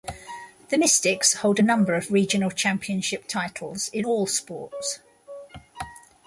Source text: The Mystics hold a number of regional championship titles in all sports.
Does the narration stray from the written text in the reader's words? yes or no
no